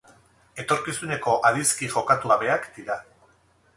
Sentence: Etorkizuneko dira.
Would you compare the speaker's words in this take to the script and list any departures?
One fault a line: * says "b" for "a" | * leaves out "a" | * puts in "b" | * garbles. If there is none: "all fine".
* puts in "adizki jokatu gabeak"